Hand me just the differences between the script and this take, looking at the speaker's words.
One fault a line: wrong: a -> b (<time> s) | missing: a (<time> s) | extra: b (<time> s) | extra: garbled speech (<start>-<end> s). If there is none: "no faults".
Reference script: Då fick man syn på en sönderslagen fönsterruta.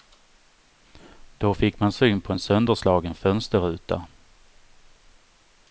no faults